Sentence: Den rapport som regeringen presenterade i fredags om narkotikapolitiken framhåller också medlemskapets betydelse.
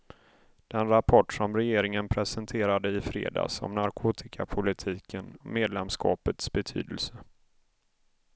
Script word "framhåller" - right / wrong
wrong